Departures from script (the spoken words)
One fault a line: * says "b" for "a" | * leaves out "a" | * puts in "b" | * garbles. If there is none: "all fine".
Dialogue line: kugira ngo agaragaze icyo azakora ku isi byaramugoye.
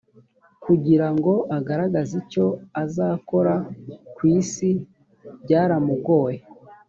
all fine